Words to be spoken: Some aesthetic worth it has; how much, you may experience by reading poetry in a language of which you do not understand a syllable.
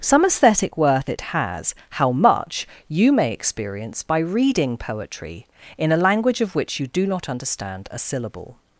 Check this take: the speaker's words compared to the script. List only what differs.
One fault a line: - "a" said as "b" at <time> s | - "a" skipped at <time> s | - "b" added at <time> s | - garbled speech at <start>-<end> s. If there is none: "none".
none